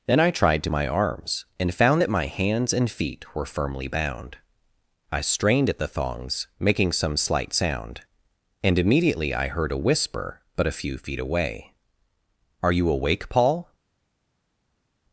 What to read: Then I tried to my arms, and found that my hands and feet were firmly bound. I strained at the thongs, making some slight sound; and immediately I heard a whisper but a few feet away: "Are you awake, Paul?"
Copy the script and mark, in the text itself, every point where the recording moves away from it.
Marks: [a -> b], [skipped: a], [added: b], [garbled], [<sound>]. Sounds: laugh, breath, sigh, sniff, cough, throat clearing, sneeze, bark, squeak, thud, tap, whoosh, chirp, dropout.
Then I tried to my arms, and found that my hands and feet were firmly bound. I strained at the thongs, making some slight sound; and immediately I heard a whisper but a few feet away: "Are you awake, Paul?"